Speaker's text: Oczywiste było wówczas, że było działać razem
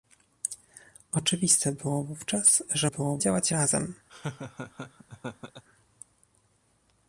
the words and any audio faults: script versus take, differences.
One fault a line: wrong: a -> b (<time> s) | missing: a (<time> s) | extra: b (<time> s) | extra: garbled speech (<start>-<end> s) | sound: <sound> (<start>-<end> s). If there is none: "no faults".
sound: laugh (4.1-5.6 s)